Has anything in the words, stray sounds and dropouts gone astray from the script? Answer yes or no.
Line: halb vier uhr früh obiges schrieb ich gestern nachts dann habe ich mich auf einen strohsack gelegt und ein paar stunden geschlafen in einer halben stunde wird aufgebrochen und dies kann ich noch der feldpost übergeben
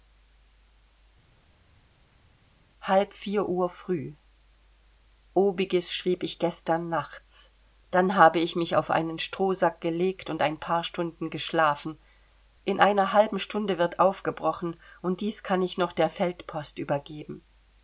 no